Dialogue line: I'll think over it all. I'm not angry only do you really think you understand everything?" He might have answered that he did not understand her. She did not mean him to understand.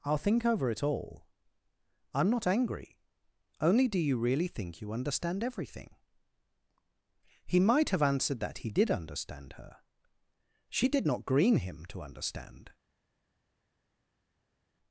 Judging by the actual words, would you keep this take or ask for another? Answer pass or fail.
fail